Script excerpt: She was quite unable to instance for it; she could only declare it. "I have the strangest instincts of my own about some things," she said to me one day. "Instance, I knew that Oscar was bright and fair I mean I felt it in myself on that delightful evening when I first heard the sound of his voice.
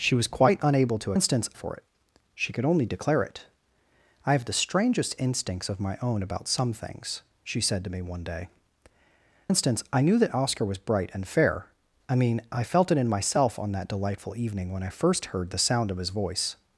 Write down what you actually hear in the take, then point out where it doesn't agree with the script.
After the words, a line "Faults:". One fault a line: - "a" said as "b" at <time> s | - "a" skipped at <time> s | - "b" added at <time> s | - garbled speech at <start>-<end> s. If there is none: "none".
She was quite unable to instance for it; she could only declare it. "I have the strangest instincts of my own about some things," she said to me one day. "Instance, I knew that Oscar was bright and fair I mean I felt it in myself on that delightful evening when I first heard the sound of his voice.
Faults:
none